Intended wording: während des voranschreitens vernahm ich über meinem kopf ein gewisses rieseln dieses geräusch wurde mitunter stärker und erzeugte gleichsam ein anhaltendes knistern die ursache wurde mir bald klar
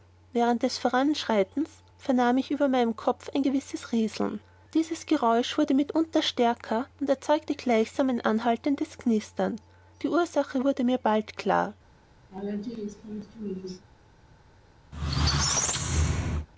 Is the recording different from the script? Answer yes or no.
no